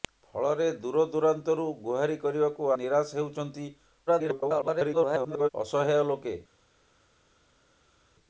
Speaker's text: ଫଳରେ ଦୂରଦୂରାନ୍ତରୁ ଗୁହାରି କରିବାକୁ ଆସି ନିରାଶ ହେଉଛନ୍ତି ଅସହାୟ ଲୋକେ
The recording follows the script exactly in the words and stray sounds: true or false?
false